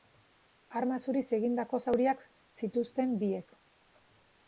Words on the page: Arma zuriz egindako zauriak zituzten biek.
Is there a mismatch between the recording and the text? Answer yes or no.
no